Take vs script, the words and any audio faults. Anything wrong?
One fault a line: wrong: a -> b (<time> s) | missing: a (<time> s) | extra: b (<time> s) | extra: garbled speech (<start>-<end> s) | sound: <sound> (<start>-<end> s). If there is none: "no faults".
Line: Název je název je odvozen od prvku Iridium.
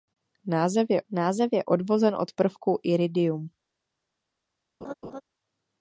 sound: laugh (4.8-5.2 s)